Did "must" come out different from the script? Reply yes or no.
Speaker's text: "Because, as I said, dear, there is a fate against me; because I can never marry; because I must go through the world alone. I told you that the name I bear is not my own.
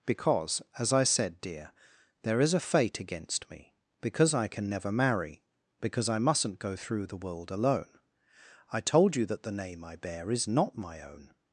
yes